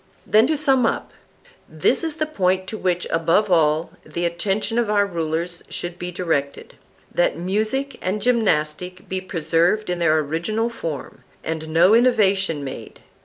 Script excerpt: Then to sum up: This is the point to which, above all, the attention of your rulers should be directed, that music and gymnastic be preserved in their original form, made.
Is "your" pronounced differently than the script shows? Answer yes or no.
yes